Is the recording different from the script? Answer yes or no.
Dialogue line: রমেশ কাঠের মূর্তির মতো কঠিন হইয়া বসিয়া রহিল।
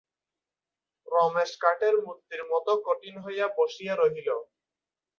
no